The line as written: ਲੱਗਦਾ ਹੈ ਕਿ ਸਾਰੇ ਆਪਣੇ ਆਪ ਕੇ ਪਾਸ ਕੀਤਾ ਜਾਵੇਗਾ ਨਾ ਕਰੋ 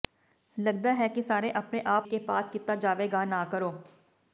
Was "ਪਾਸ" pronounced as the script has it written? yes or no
yes